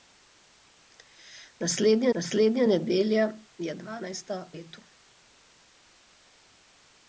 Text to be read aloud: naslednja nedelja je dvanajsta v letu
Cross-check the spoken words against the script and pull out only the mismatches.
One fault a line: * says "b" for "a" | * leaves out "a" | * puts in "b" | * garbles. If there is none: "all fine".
* puts in "naslednja"
* leaves out "v"